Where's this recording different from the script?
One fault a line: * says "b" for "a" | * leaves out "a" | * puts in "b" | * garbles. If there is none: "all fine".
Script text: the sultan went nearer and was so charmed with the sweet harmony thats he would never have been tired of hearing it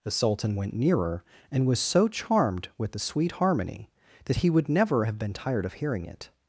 * says "that" for "thats"